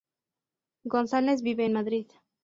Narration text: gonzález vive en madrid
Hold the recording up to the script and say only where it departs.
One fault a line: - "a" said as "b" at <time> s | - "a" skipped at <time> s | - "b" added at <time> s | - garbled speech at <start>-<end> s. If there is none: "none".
none